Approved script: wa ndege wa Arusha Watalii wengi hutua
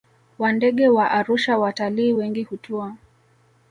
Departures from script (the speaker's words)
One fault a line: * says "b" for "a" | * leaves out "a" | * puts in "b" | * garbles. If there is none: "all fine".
all fine